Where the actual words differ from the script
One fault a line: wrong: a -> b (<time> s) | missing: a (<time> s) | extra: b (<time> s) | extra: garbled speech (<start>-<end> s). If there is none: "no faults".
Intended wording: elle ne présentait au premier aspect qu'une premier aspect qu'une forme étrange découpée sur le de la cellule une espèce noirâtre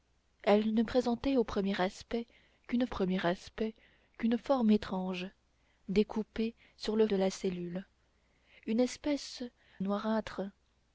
no faults